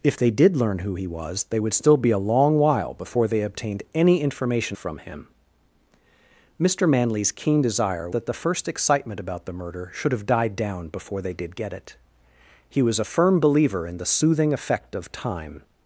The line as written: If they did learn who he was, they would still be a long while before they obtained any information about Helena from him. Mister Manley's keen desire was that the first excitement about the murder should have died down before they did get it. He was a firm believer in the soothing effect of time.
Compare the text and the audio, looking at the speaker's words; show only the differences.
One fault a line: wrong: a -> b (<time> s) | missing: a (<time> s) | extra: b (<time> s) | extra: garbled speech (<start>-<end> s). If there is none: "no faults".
missing: about Helena (4.8 s)
missing: was (8.1 s)